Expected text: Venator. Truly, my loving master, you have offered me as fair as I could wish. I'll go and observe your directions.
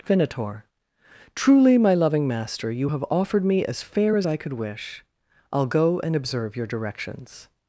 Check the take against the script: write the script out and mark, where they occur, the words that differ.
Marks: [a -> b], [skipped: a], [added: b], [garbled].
Venator. Truly, my loving master, you have offered me as fair as I could wish. I'll go and observe your directions.